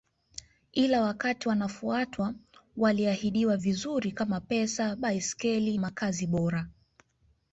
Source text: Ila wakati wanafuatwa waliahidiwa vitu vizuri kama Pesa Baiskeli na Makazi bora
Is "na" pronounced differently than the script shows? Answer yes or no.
yes